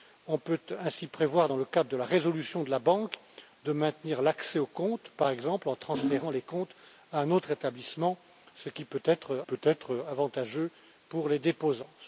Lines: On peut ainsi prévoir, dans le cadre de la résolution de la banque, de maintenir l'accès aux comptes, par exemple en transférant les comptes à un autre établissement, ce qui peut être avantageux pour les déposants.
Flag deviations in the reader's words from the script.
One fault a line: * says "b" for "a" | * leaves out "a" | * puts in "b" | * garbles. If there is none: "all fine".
* puts in "peut être"